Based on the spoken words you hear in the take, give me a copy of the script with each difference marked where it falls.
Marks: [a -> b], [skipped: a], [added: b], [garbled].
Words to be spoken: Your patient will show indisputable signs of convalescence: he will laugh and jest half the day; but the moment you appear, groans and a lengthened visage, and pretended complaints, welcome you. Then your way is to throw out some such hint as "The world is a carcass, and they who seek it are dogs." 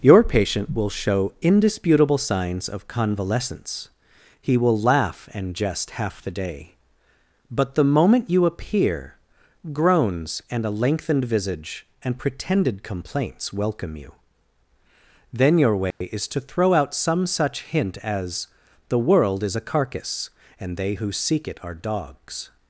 Your patient will show indisputable signs of convalescence: he will laugh and jest half the day; but the moment you appear, groans and a lengthened visage, and pretended complaints, welcome you. Then your way is to throw out some such hint as "The world is a carcass, and they who seek it are dogs."